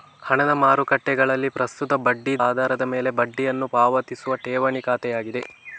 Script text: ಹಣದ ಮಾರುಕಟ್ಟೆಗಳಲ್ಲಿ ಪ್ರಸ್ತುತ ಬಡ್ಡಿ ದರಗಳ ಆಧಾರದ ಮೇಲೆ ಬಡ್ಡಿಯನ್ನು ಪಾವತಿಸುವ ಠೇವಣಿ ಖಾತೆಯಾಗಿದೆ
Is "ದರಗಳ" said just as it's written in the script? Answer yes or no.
no